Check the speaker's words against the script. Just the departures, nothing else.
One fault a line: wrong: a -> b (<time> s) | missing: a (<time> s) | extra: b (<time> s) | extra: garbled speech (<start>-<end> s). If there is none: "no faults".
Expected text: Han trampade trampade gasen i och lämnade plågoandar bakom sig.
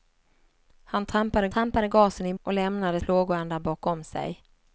no faults